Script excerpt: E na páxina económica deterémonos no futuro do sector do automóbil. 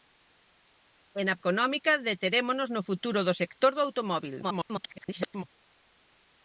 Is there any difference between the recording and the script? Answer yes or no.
yes